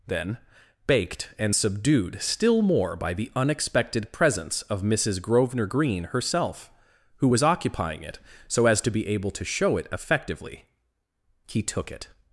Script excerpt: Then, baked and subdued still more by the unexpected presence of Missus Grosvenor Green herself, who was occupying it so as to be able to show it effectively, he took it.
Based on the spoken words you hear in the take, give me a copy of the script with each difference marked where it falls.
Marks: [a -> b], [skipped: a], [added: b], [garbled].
Then, baked and subdued still more by the unexpected presence of Missus Grosvenor Green herself, who was occupying it so as to be able to show it effectively, he took it.